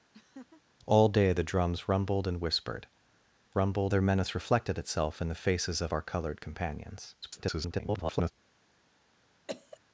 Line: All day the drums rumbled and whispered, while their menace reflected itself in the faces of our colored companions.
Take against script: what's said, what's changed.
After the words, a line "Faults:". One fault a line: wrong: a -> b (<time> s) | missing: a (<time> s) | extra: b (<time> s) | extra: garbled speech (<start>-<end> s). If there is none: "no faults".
All day the drums rumbled and whispered, rumbled their menace reflected itself in the faces of our colored companions. [garbled]
Faults:
wrong: while -> rumbled (3.5 s)
extra: garbled speech (7.2-8.3 s)